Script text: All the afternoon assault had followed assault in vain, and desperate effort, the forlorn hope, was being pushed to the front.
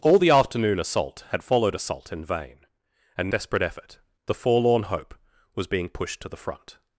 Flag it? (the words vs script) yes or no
no